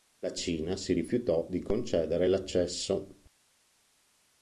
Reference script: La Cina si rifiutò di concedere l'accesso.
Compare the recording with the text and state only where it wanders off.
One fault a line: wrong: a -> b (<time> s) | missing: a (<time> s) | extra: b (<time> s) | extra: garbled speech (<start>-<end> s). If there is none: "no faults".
no faults